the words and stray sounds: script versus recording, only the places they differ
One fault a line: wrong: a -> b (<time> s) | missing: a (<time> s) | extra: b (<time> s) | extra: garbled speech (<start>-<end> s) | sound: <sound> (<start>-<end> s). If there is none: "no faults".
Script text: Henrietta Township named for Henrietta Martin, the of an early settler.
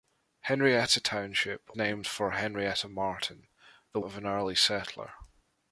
no faults